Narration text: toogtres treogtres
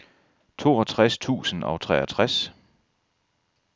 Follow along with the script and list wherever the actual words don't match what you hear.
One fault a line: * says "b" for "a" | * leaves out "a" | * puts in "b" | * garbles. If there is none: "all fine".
* puts in "tusind og"